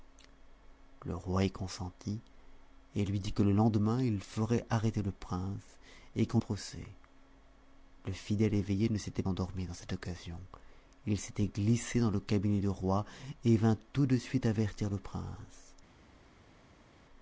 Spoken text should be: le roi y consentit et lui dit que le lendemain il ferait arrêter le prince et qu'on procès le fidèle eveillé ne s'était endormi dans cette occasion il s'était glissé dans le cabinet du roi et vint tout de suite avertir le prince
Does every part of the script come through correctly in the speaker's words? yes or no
yes